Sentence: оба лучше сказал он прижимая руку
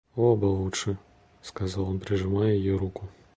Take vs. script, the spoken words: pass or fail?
fail